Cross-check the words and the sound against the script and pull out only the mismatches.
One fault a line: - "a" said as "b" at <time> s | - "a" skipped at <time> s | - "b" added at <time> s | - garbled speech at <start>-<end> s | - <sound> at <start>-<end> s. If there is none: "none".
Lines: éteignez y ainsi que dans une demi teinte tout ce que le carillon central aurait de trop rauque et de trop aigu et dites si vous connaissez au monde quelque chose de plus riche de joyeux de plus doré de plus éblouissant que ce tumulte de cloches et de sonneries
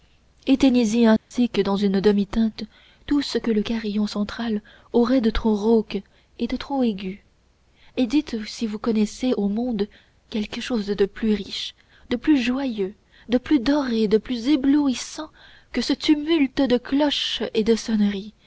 - dropout at 1.2-1.3 s
- "plus" added at 12.2 s